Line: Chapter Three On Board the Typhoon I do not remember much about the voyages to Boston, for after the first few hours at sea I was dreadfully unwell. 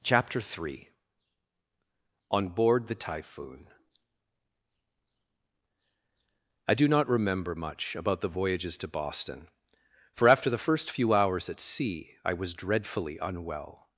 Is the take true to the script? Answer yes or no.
yes